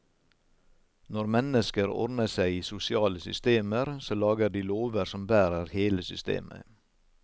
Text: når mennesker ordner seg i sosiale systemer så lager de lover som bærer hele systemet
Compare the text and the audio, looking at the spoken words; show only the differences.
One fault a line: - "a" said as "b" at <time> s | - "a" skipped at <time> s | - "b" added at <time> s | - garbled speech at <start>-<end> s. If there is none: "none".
none